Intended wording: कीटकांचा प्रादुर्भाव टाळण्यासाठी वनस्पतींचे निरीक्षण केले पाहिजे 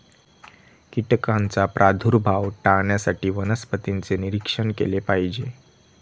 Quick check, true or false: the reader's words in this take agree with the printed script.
true